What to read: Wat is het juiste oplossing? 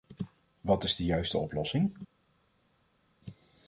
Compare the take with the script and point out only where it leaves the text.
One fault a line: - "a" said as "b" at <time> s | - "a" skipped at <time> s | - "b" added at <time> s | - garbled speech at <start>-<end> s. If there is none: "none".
- "het" said as "de" at 0.9 s